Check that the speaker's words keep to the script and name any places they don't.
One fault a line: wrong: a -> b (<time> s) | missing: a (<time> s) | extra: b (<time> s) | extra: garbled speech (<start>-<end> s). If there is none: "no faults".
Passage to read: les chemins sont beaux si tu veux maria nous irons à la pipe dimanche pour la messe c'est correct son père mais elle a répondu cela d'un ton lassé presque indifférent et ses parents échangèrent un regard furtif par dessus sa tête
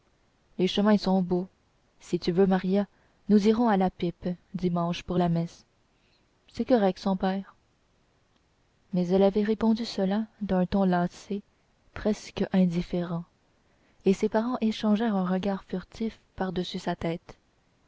wrong: a -> avait (9.2 s)